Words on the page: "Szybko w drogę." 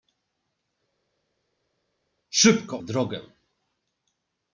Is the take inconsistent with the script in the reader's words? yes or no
no